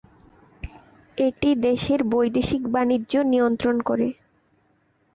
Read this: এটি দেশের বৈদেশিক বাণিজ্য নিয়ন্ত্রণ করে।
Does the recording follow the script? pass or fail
pass